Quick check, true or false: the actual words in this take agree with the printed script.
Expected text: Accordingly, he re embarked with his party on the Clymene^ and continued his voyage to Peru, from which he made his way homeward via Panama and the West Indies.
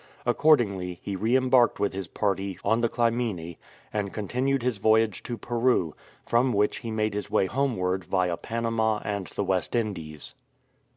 true